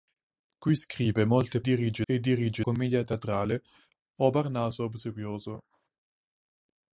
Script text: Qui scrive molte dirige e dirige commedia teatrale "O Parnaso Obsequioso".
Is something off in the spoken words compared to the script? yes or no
no